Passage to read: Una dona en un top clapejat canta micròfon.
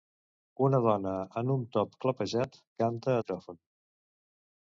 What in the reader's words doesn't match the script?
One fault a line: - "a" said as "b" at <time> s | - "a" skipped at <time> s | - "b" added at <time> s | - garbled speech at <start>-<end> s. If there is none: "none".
none